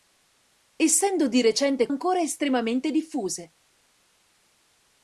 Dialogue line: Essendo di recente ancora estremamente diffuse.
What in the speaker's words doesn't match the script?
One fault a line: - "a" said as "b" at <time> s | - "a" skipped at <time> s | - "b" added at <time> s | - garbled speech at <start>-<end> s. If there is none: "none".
none